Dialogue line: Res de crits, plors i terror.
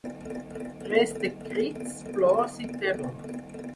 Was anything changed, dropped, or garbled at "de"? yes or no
no